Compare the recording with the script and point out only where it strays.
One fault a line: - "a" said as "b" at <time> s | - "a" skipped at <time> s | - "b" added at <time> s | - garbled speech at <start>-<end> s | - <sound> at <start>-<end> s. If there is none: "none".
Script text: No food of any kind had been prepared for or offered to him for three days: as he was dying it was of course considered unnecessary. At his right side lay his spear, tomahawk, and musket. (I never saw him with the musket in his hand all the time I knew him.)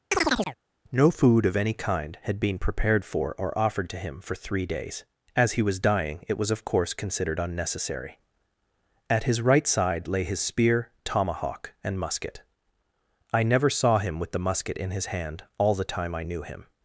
- chirp at 0.1-0.6 s